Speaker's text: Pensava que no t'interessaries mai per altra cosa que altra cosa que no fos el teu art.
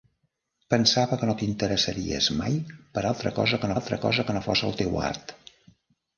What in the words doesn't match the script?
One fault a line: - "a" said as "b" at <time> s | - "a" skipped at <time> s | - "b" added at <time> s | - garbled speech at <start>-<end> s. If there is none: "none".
none